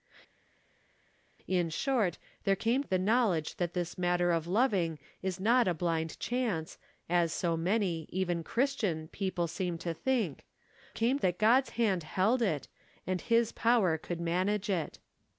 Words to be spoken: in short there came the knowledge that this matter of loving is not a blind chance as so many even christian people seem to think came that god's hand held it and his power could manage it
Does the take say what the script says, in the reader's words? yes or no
yes